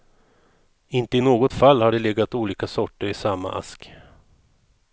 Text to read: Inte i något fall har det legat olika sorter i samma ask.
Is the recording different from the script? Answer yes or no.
no